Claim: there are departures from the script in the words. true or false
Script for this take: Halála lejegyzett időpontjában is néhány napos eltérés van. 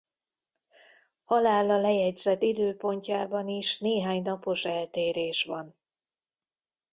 false